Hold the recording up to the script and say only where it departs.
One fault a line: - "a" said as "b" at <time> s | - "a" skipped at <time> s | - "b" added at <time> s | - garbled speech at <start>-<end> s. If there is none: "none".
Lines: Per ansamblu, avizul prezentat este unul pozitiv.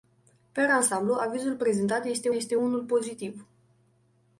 - "este" added at 2.3 s